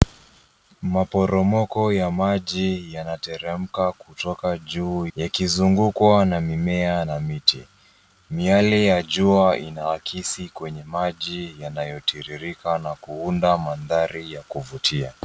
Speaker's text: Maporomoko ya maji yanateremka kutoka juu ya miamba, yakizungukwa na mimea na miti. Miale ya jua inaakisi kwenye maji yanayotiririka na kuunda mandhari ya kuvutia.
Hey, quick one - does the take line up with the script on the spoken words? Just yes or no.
no